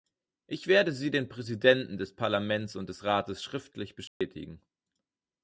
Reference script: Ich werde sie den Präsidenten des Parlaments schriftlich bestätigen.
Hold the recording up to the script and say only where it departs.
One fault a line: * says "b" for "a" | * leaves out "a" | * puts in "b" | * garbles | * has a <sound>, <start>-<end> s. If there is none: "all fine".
* puts in "und des Rates"
* has a dropout, 4.1-4.2 s